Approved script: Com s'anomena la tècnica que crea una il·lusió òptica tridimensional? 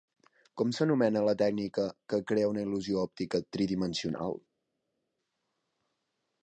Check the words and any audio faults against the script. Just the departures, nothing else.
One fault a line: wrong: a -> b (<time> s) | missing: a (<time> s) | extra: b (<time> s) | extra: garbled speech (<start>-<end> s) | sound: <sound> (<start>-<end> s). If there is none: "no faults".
no faults